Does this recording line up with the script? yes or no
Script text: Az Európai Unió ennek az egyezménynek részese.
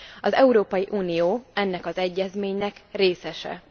yes